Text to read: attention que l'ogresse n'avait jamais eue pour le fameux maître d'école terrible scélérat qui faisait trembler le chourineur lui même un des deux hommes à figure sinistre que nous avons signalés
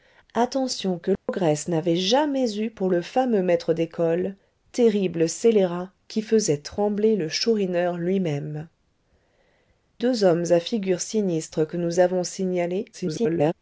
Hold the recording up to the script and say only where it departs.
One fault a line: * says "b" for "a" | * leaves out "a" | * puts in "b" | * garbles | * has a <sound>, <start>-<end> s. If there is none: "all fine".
* has a dropout, 1.2-1.3 s
* leaves out "un des"
* garbles